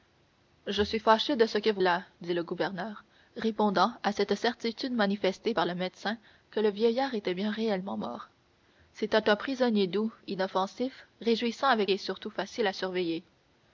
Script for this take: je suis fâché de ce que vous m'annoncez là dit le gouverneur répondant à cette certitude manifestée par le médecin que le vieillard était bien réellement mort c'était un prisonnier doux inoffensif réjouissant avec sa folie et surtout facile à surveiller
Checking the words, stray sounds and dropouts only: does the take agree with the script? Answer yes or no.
no